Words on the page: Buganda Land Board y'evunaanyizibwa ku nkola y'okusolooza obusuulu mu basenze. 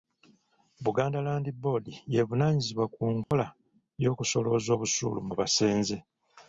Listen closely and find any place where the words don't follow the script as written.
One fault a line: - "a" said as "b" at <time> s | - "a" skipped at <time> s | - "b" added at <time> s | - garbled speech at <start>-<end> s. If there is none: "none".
none